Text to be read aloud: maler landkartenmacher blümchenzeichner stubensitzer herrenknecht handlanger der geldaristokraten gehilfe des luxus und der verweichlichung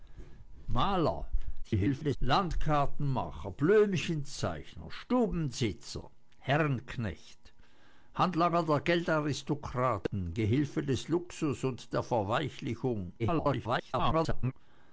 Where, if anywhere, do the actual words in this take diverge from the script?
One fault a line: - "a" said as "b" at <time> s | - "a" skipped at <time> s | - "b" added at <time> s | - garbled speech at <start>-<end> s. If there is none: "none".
- garbled speech at 1.6-2.2 s
- garbled speech at 13.2-14.5 s